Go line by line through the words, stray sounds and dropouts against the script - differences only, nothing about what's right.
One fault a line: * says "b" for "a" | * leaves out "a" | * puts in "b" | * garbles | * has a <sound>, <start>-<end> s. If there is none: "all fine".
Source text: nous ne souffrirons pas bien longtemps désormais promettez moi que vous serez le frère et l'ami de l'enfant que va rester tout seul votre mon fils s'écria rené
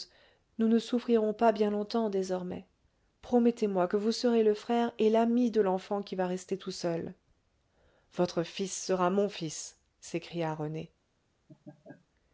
* says "qui" for "que"
* puts in "fils sera"
* has a laugh, 11.5-12.1 s